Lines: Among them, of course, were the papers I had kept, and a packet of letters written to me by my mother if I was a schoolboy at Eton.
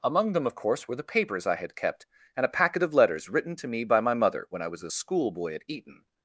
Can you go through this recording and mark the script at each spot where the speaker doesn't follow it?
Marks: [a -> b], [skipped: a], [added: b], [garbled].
Among them, of course, were the papers I had kept, and a packet of letters written to me by my mother [if -> when] I was a schoolboy at Eton.